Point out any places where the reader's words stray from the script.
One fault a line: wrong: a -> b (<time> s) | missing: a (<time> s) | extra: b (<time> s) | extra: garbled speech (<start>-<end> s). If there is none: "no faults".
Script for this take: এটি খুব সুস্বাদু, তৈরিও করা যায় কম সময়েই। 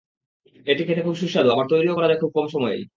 extra: খেতে (0.8 s)
extra: আবার (1.5 s)
extra: খুব (2.2 s)